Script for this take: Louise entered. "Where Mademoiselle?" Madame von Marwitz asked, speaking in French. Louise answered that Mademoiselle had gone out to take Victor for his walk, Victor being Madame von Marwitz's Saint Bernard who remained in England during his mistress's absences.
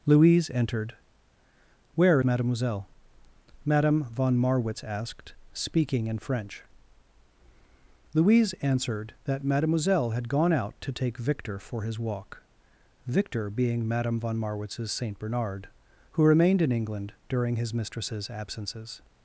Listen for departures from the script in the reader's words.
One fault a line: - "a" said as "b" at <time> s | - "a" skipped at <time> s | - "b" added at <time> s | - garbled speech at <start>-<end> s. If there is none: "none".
none